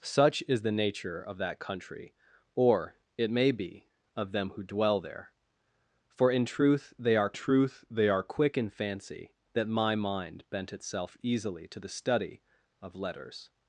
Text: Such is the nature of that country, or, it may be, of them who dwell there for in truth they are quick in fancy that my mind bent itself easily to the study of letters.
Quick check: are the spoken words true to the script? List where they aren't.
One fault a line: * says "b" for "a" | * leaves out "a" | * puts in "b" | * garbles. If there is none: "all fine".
* puts in "truth they are"